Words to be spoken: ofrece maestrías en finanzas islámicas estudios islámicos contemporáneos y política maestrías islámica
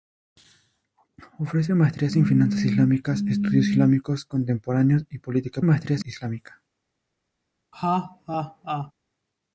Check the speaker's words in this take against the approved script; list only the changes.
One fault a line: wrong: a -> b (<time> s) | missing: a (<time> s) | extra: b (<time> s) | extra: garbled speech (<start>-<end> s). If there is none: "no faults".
no faults